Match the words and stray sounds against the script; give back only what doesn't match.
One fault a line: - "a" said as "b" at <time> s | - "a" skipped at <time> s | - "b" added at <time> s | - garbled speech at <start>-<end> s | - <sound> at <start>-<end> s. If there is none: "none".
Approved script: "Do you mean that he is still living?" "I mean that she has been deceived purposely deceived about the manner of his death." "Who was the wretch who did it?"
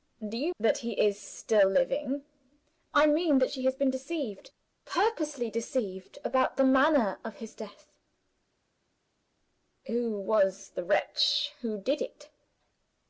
- "mean" skipped at 0.6 s